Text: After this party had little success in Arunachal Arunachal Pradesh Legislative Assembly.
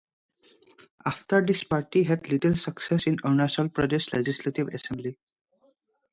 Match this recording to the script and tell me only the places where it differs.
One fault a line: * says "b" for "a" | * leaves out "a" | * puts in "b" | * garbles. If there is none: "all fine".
* leaves out "Arunachal"